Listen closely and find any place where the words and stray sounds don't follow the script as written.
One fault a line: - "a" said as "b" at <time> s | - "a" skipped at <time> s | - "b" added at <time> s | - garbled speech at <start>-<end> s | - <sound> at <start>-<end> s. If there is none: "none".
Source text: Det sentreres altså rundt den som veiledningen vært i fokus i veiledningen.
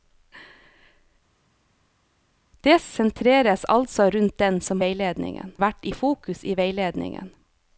none